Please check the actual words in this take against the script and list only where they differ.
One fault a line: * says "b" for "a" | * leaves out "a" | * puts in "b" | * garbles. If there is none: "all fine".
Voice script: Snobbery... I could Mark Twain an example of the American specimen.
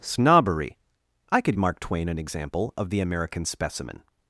all fine